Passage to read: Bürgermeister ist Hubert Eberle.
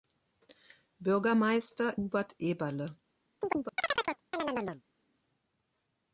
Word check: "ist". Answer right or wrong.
wrong